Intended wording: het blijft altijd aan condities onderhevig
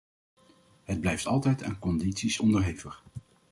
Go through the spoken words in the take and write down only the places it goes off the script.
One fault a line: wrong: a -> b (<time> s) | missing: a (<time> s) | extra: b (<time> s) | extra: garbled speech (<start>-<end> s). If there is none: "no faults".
no faults